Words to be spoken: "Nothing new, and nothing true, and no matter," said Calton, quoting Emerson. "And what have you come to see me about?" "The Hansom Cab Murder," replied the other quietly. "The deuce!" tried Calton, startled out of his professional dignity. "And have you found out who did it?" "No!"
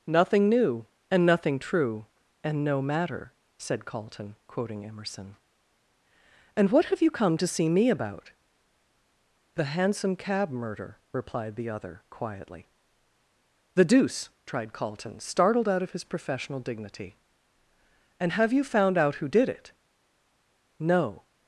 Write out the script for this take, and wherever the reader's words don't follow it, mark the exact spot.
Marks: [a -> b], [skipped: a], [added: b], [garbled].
"Nothing new, and nothing true, and no matter," said Calton, quoting Emerson. "And what have you come to see me about?" "The Hansom Cab Murder," replied the other quietly. "The deuce!" tried Calton, startled out of his professional dignity. "And have you found out who did it?" "No!"